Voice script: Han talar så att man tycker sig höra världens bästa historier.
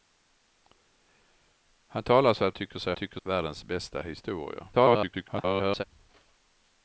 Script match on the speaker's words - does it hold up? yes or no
no